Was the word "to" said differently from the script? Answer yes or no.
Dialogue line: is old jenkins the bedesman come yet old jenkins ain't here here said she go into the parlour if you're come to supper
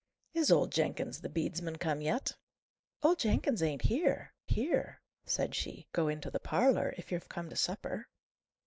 no